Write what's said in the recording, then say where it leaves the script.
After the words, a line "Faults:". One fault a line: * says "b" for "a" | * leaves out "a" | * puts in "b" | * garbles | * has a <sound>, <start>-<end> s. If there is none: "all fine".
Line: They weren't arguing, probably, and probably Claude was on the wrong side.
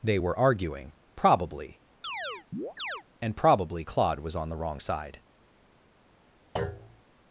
They were arguing, probably, and probably Claude was on the wrong side.
Faults:
* says "were" for "weren't"
* has a chirp, 2.0-3.0 s
* has a thud, 6.6-7.0 s